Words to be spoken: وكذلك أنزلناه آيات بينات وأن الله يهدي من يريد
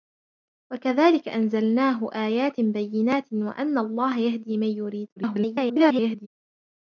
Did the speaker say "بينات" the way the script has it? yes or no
yes